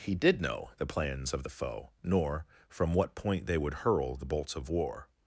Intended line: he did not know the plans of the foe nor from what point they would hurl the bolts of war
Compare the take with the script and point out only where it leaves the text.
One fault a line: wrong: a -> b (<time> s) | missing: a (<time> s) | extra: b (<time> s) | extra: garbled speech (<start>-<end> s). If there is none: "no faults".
missing: not (0.4 s)